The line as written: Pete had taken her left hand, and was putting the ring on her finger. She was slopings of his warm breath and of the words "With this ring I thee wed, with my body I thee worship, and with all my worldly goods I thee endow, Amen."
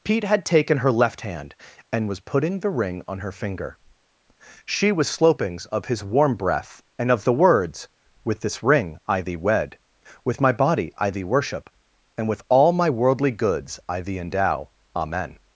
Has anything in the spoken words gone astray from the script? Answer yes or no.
no